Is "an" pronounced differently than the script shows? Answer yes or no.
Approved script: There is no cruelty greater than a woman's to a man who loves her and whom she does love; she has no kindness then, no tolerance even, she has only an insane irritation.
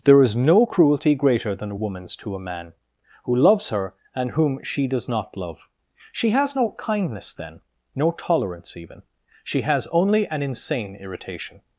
no